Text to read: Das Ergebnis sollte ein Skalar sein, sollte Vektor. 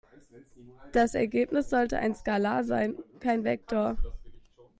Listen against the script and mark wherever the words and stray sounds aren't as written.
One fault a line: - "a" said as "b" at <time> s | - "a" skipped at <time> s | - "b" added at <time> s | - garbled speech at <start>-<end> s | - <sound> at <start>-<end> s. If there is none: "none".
- "sollte" said as "kein" at 3.2 s